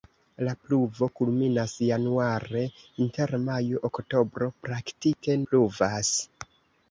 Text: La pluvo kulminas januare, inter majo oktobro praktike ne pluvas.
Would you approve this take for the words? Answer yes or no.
no